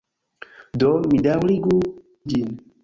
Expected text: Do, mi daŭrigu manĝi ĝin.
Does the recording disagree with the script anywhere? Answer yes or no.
yes